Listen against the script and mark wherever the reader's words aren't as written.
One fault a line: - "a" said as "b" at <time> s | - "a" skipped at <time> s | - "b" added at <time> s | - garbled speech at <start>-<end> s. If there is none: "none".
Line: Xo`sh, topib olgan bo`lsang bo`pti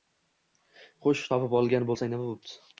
- "nima" added at 2.2 s